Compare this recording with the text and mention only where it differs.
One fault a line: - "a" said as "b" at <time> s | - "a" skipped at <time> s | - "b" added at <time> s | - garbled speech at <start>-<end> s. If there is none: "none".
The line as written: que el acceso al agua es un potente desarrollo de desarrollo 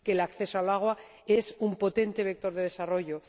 - "desarrollo" said as "vector" at 2.2 s